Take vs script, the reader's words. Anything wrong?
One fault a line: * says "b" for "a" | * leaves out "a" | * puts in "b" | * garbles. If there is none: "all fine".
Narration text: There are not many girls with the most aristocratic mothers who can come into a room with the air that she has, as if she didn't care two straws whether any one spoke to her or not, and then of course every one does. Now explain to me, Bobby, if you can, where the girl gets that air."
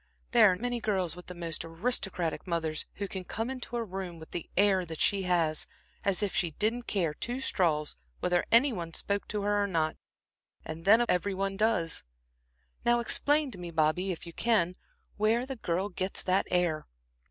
* leaves out "not"
* leaves out "of course"